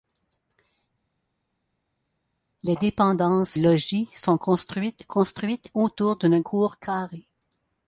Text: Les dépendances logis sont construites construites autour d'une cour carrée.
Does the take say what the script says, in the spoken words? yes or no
yes